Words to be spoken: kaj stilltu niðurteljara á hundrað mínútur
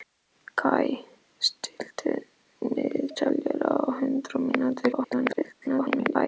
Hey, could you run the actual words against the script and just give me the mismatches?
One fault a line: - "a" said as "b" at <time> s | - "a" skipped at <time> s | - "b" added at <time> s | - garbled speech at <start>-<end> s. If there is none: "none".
- garbled speech at 4.9-6.3 s